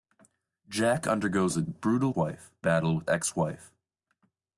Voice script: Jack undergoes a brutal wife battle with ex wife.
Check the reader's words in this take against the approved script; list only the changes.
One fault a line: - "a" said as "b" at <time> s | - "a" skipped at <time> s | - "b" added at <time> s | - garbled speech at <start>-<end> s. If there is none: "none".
none